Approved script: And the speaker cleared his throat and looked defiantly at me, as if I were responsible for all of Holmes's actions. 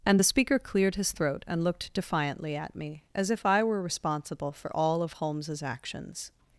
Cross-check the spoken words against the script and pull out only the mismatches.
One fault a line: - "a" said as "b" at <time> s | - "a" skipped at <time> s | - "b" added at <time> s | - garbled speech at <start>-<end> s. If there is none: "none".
none